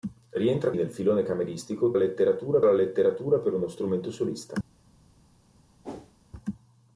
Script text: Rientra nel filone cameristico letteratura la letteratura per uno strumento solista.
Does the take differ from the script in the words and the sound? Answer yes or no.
yes